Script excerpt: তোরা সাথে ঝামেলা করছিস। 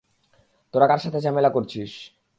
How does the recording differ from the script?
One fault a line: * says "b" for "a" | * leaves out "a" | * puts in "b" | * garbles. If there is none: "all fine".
* puts in "কার"